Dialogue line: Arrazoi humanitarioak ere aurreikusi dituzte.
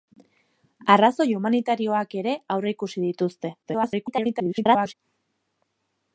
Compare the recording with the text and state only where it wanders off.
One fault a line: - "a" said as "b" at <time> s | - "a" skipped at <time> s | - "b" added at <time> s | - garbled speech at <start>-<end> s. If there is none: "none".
- garbled speech at 3.6-4.9 s